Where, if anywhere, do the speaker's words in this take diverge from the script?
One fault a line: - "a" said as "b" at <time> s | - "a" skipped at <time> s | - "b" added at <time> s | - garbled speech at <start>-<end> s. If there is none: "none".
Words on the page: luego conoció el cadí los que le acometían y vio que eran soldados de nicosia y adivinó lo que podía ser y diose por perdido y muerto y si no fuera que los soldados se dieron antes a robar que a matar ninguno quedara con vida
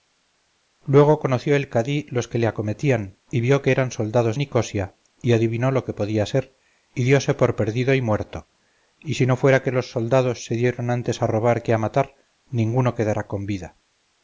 - "de" skipped at 4.3 s